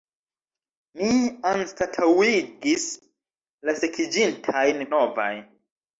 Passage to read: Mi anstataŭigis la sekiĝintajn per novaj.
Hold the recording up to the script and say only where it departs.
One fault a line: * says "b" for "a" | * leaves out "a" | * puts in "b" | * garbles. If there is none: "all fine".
* leaves out "per"